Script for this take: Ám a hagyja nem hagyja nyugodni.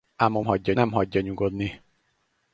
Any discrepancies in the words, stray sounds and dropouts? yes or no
no